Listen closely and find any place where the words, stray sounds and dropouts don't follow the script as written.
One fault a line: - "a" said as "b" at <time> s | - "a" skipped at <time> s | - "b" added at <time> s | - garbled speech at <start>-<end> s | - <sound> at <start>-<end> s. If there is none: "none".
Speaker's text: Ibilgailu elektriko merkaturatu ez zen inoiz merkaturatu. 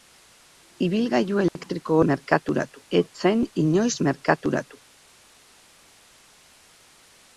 - dropout at 1.5-1.6 s